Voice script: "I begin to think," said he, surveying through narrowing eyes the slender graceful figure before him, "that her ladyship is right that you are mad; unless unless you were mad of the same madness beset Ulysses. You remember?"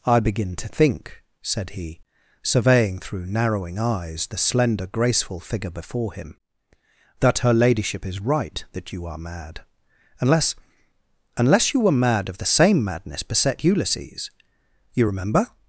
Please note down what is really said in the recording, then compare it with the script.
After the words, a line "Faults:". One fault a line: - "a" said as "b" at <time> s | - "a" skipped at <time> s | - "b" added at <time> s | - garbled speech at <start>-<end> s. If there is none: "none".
"I begin to think," said he, surveying through narrowing eyes the slender graceful figure before him, "that her ladyship is right that you are mad; unless unless you were mad of the same madness beset Ulysses. You remember?"
Faults:
none